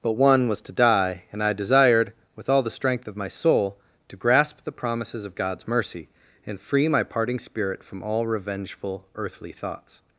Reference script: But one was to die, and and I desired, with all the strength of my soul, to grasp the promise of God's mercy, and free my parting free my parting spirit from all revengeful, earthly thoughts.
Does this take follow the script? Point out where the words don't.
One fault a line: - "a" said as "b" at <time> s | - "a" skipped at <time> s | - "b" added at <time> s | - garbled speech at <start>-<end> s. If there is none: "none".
- "and" skipped at 1.4 s
- "promise" said as "promises" at 4.7 s
- "free my parting" skipped at 7.4 s